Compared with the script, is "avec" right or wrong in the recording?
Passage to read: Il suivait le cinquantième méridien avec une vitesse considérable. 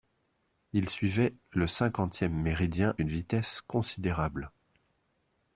wrong